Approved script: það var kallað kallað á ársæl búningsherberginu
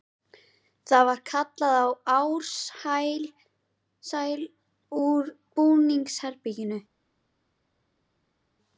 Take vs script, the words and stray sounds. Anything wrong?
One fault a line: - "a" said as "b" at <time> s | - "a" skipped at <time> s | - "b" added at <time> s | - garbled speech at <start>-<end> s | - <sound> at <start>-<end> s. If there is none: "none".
- "kallað" skipped at 1.9 s
- "úr" added at 5.0 s